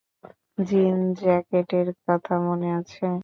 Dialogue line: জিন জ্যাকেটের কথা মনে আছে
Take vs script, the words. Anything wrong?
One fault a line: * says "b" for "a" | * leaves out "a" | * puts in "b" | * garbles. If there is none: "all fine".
all fine